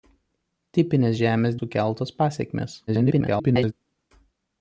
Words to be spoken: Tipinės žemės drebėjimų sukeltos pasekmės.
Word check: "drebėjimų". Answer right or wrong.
wrong